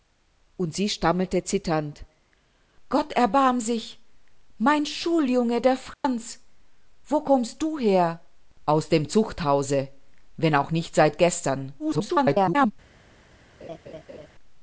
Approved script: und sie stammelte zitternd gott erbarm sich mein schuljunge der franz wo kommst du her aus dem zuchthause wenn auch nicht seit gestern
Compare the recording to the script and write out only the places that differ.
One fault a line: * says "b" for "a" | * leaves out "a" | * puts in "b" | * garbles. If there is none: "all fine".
* garbles